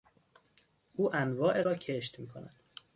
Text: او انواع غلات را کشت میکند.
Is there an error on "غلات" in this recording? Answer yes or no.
yes